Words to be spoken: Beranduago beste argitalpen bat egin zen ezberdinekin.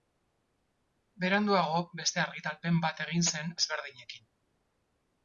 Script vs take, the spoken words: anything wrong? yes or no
no